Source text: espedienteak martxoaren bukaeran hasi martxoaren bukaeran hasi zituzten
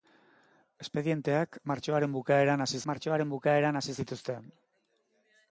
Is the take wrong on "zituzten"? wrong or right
right